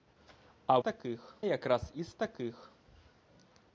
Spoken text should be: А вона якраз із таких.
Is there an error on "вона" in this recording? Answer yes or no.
yes